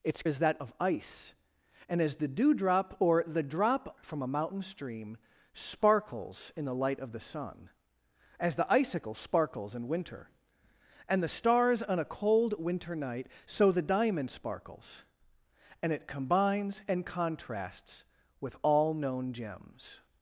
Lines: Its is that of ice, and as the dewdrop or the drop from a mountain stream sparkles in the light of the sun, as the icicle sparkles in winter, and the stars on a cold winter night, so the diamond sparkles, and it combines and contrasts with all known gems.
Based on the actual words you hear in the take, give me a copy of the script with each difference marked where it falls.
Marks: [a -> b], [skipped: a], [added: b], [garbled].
Its is that of ice, and as the dewdrop or the drop from a mountain stream sparkles in the light of the sun, as the icicle sparkles in winter, and the stars on a cold winter night, so the diamond sparkles, and it combines and contrasts with all known gems.